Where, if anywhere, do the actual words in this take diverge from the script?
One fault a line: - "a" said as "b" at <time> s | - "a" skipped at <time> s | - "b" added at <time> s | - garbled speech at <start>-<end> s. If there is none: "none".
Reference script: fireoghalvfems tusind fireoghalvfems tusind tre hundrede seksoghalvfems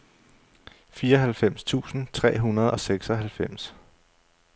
- "fireoghalvfems tusind" skipped at 2.1 s
- "og" added at 2.7 s